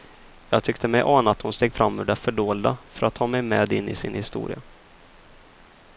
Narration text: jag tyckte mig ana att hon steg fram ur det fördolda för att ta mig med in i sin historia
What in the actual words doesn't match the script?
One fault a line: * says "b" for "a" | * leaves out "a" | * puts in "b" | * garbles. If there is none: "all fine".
all fine